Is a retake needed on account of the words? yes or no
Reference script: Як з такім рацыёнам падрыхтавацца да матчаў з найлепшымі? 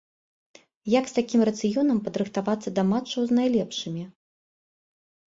no